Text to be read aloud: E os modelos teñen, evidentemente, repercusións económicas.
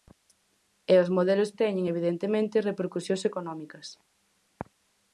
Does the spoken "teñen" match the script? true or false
true